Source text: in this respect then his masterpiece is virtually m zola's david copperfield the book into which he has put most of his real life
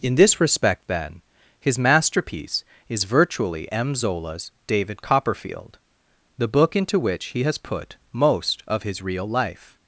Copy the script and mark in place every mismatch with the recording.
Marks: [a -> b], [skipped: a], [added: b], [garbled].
in this respect then his masterpiece is virtually m zola's david copperfield the book into which he has put most of his real life